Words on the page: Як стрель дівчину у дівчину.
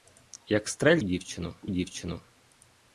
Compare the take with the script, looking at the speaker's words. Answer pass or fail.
pass